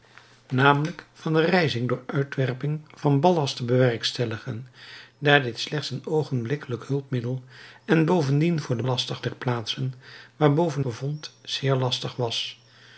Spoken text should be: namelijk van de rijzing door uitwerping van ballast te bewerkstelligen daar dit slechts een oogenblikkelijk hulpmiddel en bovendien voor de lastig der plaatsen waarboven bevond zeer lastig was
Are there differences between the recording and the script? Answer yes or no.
no